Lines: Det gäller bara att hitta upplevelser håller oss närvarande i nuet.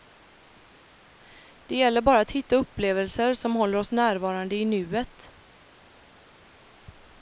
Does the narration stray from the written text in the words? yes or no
yes